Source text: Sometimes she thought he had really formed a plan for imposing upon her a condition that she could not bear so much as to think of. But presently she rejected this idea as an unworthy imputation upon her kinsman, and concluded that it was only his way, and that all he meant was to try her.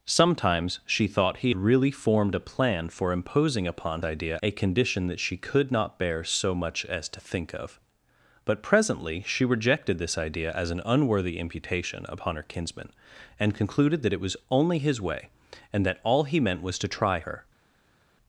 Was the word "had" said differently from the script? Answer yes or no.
yes